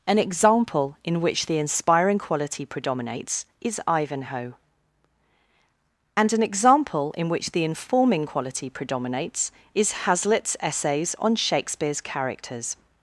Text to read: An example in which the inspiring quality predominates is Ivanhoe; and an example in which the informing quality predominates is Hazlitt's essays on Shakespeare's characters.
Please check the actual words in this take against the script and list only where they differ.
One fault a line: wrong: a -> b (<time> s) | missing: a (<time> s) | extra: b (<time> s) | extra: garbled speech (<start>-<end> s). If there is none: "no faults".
no faults